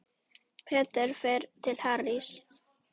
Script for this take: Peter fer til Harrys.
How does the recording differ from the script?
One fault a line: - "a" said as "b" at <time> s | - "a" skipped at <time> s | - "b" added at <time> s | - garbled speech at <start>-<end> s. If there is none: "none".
none